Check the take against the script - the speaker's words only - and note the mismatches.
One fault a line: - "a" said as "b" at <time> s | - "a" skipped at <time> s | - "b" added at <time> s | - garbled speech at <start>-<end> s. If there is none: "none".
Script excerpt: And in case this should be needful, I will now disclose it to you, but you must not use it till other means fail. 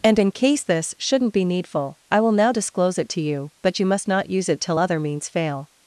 - "should" said as "shouldn't" at 1.0 s